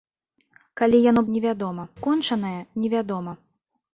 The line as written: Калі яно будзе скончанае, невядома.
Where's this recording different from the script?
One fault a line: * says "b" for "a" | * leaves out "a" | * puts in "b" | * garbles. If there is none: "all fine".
* says "невядома" for "будзе"